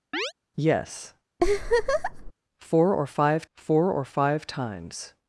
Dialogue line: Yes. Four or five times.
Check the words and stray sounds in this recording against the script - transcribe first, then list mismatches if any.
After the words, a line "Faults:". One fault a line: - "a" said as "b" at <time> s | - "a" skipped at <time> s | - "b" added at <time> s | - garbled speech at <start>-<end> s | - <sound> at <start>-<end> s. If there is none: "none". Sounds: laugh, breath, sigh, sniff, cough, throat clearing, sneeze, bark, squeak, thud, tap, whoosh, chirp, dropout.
Yes. Four or five four or five times.
Faults:
- chirp at 0.1-0.3 s
- laugh at 1.4-2.3 s
- "four or five" added at 3.5 s